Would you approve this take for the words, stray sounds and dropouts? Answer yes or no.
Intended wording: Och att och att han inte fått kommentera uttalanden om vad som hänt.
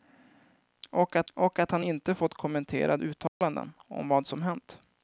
no